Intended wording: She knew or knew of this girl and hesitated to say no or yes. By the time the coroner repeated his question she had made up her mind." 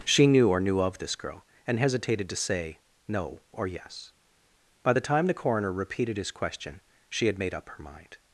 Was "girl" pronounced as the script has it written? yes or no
yes